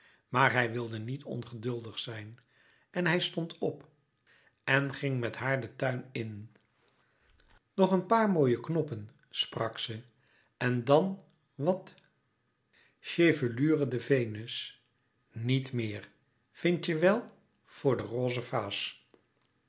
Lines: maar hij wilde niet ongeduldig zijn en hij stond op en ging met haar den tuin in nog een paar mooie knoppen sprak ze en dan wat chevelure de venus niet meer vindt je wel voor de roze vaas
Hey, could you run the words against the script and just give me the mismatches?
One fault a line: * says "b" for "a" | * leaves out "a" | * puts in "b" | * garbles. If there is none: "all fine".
all fine